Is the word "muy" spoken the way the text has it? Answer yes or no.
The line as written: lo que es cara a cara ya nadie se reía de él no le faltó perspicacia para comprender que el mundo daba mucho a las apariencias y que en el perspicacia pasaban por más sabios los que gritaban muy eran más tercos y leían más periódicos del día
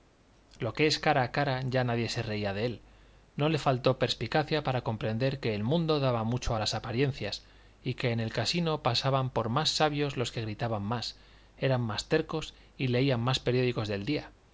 no